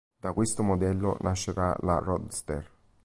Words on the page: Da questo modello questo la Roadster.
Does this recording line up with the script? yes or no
no